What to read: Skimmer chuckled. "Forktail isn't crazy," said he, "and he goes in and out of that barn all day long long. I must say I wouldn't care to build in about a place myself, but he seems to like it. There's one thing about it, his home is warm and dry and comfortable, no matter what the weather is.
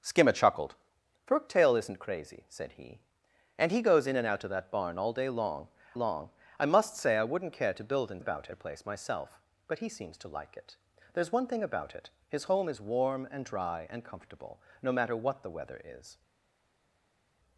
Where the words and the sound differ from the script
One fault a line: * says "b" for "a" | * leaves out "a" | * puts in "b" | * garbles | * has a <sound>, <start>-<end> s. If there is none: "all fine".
all fine